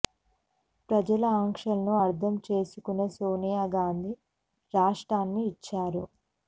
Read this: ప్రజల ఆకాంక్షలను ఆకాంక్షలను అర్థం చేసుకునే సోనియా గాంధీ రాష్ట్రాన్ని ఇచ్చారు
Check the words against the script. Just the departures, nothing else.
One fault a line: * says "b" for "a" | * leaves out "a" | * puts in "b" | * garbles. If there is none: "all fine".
* leaves out "ఆకాంక్షలను"